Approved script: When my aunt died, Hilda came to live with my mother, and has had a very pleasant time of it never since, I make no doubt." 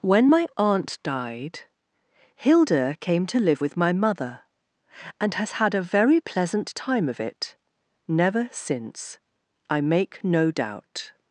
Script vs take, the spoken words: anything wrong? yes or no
no